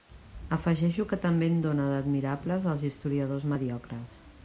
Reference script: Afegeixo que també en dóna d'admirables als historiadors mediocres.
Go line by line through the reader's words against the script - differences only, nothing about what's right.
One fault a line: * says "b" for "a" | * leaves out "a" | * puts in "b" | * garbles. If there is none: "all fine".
all fine